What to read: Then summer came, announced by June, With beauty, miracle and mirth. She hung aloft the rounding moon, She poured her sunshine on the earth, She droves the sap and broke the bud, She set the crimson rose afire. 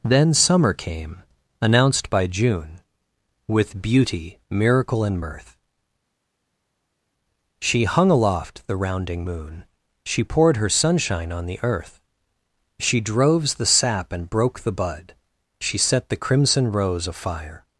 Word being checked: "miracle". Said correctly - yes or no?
yes